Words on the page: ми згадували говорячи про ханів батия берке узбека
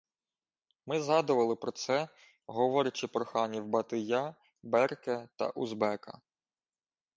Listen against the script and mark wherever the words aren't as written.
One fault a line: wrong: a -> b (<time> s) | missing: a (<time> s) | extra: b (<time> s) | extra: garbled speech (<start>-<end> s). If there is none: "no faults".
extra: про це (1.6 s)
extra: та (5.3 s)